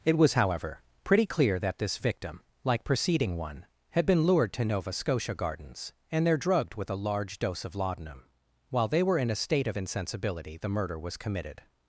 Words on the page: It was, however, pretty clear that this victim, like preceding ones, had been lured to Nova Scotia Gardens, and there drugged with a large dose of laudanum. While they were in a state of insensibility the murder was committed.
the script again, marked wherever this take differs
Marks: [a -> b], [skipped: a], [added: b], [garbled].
It was, however, pretty clear that this victim, like preceding [ones, -> one] had been lured to Nova Scotia Gardens, and there drugged with a large dose of laudanum. While they were in a state of insensibility the murder was committed.